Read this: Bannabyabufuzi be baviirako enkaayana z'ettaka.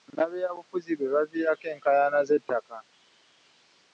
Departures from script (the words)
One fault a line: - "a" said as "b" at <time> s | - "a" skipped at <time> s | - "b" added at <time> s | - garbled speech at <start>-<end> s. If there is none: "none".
none